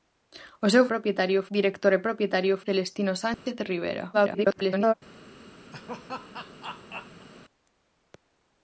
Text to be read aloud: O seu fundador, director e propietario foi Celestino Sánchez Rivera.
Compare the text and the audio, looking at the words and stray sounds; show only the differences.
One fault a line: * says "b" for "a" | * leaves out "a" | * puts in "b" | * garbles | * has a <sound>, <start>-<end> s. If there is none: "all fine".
* says "propietario" for "fundador"
* leaves out "foi"
* has a dropout, 3.3-3.5 s
* garbles
* has a laugh, 5.7-7.3 s